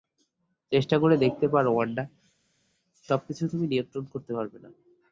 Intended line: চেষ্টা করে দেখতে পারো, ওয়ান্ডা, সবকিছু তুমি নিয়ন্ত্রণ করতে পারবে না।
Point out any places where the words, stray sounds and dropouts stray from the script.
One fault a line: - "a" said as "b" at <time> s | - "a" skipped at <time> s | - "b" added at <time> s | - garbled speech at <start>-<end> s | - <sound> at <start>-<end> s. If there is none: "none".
none